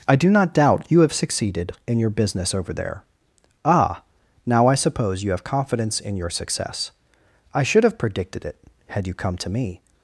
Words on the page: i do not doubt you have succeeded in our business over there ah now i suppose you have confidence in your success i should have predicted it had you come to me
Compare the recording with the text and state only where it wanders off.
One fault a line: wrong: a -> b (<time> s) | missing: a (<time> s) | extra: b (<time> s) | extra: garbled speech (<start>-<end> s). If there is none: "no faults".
wrong: our -> your (2.0 s)